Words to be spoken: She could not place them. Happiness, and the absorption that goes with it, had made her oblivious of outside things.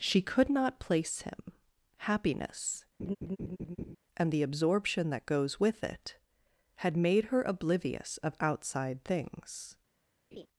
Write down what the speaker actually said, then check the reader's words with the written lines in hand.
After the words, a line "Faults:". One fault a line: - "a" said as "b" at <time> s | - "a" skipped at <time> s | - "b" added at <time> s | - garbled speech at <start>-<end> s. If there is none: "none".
She could not place him. Happiness, and the absorption that goes with it, had made her oblivious of outside things.
Faults:
- "them" said as "him" at 1.2 s